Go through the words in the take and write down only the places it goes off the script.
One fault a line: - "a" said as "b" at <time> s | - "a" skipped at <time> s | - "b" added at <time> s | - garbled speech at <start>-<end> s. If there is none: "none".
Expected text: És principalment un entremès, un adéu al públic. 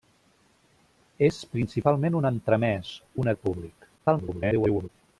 - "adéu" skipped at 3.3 s
- garbled speech at 4.0-4.9 s